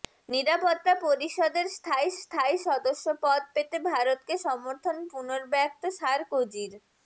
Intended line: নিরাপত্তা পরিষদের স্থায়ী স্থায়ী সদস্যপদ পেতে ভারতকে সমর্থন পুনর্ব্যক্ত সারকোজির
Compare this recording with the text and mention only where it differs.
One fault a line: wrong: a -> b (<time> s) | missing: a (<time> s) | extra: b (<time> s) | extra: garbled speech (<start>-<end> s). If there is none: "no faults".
no faults